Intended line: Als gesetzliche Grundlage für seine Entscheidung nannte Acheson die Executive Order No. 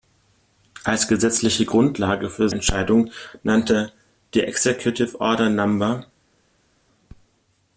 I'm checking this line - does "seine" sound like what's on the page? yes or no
no